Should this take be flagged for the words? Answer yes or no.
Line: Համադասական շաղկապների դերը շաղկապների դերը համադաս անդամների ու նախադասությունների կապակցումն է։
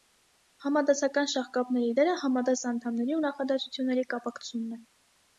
yes